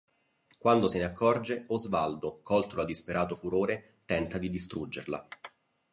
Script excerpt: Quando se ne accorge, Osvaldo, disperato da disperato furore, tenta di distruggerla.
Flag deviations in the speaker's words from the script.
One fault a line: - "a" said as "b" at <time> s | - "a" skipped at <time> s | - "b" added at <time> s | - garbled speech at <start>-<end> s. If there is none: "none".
- "disperato" said as "colto" at 2.4 s